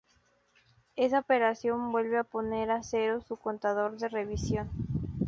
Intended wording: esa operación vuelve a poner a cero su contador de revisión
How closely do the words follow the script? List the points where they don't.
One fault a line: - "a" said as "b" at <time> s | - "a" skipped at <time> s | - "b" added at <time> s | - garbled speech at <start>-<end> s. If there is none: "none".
none